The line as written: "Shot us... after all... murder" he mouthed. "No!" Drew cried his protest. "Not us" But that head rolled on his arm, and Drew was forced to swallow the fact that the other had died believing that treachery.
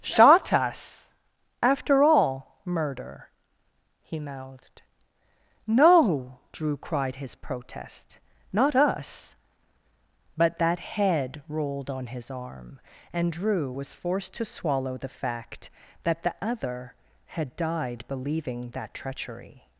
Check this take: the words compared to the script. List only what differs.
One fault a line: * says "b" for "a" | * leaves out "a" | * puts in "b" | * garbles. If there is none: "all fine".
all fine